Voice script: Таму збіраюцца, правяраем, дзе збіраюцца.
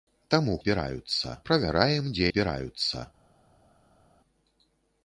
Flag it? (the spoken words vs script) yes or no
no